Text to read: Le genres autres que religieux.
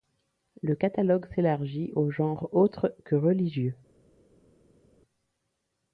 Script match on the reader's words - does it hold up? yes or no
no